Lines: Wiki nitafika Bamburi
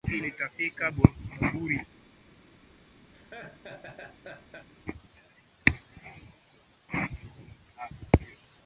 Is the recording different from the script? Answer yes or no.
no